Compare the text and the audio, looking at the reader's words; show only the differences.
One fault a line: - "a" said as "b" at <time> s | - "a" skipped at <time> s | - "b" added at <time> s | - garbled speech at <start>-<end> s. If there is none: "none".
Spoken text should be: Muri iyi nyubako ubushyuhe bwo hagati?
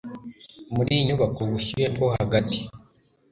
none